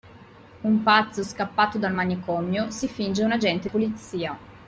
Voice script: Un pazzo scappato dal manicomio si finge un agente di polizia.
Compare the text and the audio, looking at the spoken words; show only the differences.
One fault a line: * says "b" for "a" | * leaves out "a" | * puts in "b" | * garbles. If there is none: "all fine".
* leaves out "di"